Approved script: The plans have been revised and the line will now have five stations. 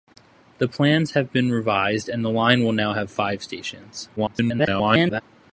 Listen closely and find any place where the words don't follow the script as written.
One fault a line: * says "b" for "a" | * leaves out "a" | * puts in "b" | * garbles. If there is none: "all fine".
* garbles